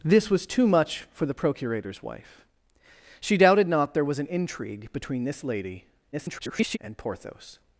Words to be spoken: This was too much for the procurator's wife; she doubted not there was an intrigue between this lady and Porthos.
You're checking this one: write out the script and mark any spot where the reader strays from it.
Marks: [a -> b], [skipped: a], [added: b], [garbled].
This was too much for the procurator's wife; she doubted not there was an intrigue between this lady [garbled] and Porthos.